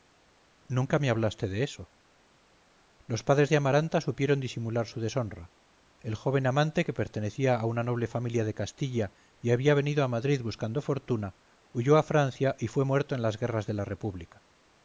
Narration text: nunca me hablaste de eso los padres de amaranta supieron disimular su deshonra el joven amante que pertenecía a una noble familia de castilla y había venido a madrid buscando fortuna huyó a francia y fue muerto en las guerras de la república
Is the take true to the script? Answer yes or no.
yes